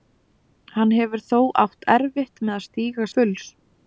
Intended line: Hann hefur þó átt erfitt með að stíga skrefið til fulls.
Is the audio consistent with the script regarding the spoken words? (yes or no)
no